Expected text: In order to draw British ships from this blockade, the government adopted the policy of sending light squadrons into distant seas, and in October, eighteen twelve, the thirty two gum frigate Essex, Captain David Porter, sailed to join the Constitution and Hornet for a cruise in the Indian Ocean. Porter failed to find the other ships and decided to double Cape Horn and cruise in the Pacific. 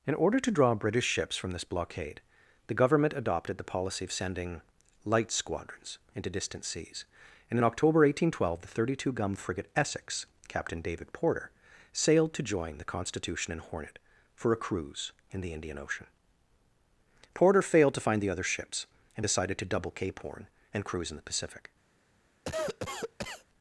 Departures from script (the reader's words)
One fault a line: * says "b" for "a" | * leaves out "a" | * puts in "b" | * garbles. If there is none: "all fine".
all fine